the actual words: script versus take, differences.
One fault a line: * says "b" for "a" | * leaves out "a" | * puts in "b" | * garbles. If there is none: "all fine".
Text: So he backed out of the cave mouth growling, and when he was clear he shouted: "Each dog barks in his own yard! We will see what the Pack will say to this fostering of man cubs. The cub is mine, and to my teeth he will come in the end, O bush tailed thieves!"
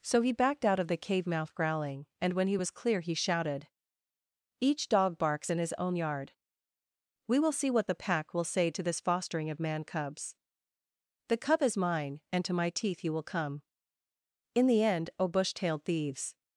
all fine